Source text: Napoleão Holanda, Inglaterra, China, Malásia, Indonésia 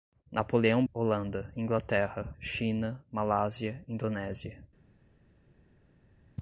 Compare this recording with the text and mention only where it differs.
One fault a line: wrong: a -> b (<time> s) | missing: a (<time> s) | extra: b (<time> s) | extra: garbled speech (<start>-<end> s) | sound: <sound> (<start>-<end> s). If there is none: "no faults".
no faults